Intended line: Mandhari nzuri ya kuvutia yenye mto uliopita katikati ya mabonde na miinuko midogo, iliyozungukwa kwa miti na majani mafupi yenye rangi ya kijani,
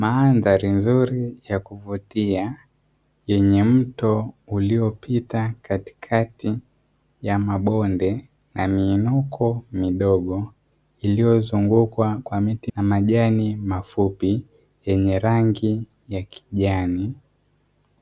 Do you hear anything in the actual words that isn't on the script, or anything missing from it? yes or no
no